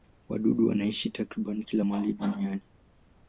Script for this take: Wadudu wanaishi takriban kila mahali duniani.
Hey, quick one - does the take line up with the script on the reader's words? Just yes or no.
yes